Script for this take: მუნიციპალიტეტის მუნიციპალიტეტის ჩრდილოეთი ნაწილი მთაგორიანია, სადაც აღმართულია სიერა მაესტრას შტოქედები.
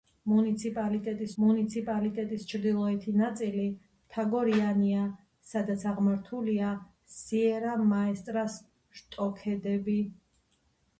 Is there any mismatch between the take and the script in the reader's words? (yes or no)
no